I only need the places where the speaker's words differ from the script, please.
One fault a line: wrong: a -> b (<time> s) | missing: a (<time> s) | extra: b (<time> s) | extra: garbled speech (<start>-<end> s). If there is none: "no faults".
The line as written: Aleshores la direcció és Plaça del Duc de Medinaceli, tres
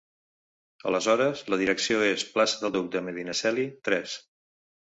no faults